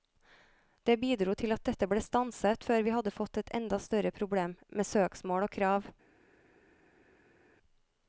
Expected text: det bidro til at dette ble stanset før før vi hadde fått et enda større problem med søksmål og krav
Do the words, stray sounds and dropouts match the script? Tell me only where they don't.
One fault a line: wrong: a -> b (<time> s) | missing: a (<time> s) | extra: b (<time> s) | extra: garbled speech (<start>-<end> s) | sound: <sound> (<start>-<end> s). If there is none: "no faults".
missing: før (2.9 s)